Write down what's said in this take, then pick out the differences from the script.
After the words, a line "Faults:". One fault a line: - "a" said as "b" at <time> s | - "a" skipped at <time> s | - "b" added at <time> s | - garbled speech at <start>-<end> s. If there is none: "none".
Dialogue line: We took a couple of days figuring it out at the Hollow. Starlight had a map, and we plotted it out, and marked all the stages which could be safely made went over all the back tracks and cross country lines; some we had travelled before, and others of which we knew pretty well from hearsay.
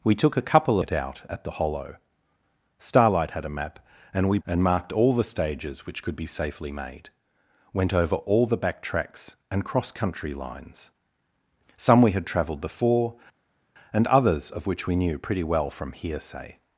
We took a couple it out at the Hollow. Starlight had a map, and we and marked all the stages which could be safely made went over all the back tracks and cross country lines; some we had travelled before, and others of which we knew pretty well from hearsay.
Faults:
- "of days figuring" skipped at 0.8 s
- "plotted it out" skipped at 4.4 s